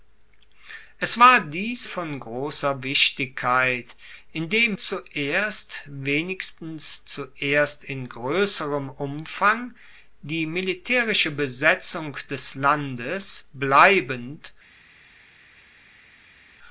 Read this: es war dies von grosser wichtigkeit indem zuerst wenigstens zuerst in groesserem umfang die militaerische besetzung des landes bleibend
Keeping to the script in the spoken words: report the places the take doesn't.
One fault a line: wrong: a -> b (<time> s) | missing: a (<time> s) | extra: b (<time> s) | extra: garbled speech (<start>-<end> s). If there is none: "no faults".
no faults